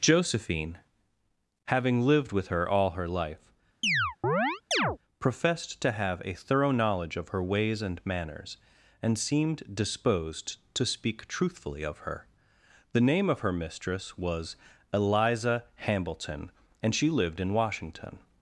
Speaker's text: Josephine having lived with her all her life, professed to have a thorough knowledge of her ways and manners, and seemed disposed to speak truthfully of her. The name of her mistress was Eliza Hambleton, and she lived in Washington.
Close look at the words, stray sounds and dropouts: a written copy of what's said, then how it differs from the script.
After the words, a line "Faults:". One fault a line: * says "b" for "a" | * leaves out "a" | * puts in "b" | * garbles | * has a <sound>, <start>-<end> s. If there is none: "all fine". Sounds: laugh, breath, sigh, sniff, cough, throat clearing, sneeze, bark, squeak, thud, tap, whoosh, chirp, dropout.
Josephine having lived with her all her life, professed to have a thorough knowledge of her ways and manners, and seemed disposed to speak truthfully of her. The name of her mistress was Eliza Hambleton, and she lived in Washington.
Faults:
* has a chirp, 3.8-5.0 s